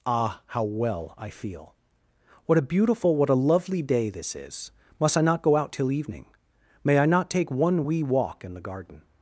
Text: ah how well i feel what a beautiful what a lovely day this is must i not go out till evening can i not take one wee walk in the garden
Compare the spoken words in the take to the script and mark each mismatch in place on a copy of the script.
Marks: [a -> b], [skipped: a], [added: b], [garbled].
ah how well i feel what a beautiful what a lovely day this is must i not go out till evening [can -> may] i not take one wee walk in the garden